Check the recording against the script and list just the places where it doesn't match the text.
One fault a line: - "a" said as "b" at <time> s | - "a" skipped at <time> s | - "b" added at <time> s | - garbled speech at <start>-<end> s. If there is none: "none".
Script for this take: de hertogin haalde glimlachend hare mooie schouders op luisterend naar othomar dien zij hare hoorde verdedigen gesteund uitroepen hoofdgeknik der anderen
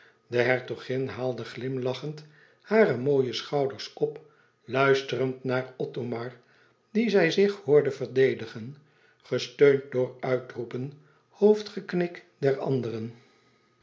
- "hare" said as "zich" at 7.3 s
- "door" added at 9.9 s